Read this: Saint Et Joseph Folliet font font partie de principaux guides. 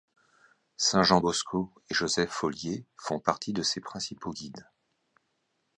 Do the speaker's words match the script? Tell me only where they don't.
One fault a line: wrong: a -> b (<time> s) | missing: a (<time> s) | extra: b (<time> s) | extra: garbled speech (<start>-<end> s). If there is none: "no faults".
extra: Jean Bosco (1.0 s)
missing: font (3.2 s)
extra: ses (3.6 s)